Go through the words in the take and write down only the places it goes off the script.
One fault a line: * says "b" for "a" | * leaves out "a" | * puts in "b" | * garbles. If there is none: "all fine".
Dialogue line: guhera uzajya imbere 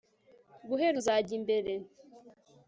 all fine